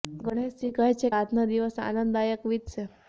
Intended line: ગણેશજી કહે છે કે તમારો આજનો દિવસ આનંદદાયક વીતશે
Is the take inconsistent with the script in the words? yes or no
yes